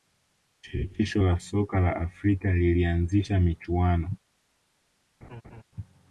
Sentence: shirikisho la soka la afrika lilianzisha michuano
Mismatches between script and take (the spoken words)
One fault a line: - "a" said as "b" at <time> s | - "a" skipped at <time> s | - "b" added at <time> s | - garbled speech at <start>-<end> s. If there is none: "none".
none